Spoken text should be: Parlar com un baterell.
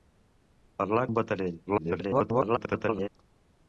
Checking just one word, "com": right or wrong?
wrong